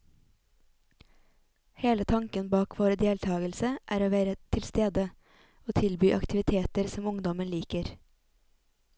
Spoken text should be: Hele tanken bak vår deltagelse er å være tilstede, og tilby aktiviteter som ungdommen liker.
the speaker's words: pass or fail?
pass